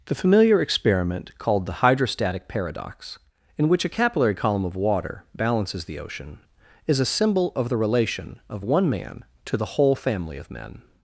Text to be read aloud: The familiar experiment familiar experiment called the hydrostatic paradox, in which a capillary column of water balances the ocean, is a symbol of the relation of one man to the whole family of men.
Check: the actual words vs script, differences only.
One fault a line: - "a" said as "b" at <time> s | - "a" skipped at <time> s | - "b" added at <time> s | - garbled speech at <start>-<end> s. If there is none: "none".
- "familiar experiment" skipped at 1.4 s